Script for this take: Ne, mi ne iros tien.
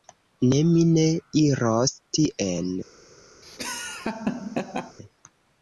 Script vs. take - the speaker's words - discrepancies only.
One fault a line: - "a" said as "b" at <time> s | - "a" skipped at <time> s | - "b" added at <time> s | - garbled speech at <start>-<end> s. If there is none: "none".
none